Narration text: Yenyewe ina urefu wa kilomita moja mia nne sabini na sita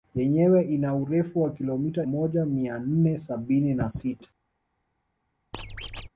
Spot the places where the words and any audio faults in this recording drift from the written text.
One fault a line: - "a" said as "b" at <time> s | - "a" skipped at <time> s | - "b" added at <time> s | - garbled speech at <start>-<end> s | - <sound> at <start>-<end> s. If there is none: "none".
- squeak at 5.5-6.1 s